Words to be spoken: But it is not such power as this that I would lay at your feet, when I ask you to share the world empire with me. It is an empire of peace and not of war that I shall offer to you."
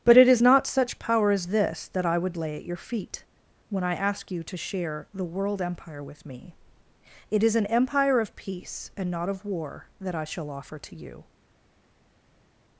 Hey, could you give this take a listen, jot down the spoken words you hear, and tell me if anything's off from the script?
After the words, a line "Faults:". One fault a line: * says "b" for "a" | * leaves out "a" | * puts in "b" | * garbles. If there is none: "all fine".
But it is not such power as this that I would lay at your feet, when I ask you to share the world empire with me. It is an empire of peace and not of war that I shall offer to you."
Faults:
all fine